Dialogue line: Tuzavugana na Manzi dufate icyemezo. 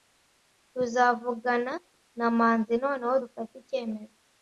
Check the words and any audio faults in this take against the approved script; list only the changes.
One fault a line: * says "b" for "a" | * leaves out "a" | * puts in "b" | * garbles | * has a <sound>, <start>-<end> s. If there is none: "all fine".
* puts in "noneho"